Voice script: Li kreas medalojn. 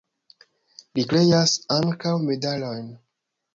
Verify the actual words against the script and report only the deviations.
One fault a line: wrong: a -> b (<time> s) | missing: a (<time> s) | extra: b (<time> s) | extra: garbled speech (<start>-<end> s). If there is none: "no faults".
extra: ankaŭ (1.8 s)